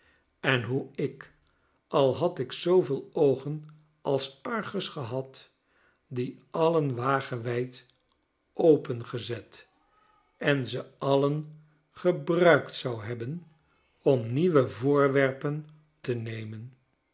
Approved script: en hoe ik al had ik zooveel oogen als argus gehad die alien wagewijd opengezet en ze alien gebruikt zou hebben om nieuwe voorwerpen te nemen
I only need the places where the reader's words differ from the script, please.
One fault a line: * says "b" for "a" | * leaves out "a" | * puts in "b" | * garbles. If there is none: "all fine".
all fine